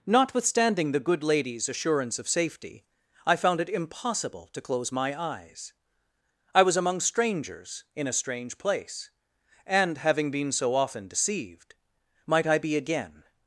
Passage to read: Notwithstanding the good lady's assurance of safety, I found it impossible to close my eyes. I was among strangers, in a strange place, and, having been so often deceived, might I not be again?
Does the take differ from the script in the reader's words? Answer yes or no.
yes